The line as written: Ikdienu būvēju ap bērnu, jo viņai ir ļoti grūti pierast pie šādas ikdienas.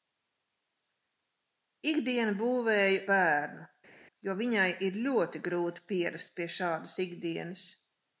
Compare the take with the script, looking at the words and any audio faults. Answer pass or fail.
fail